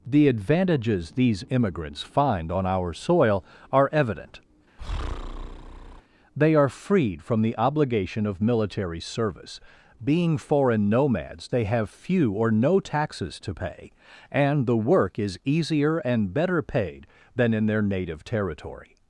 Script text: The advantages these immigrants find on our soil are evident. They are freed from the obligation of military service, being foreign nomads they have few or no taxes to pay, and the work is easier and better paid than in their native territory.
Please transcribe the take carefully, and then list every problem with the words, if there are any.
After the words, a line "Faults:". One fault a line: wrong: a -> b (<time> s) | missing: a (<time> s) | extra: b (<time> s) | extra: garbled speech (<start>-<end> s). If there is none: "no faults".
The advantages these immigrants find on our soil are evident. They are freed from the obligation of military service, being foreign nomads they have few or no taxes to pay, and the work is easier and better paid than in their native territory.
Faults:
no faults